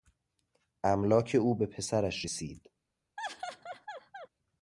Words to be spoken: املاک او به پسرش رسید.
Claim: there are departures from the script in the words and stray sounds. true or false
true